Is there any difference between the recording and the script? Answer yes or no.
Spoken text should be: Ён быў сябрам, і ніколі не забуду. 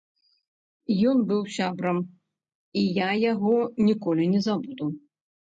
yes